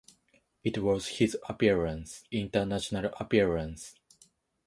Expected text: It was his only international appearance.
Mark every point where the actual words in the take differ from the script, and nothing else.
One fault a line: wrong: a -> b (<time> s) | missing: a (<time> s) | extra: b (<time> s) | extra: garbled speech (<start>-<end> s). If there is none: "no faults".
wrong: only -> appearance (1.5 s)